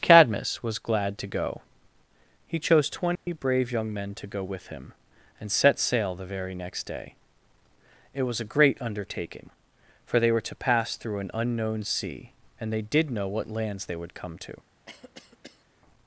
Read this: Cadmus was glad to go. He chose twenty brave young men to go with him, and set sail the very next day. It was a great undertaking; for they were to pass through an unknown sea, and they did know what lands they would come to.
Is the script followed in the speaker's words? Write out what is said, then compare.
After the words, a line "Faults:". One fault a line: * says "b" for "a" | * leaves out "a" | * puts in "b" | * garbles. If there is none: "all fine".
Cadmus was glad to go. He chose twenty brave young men to go with him, and set sail the very next day. It was a great undertaking; for they were to pass through an unknown sea, and they did know what lands they would come to.
Faults:
all fine